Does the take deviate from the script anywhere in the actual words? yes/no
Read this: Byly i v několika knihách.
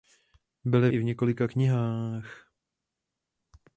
no